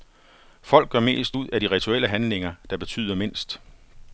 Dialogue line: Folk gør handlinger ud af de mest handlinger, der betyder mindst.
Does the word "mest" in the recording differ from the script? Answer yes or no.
yes